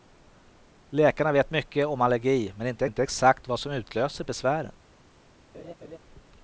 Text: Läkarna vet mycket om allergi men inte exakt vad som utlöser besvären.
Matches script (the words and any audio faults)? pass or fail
fail